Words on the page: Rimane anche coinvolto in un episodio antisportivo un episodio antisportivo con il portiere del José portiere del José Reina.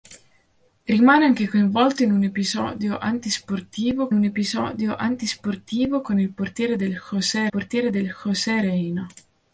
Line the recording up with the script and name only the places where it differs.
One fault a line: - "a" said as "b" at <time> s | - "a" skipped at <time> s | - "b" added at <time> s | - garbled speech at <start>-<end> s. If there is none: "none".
none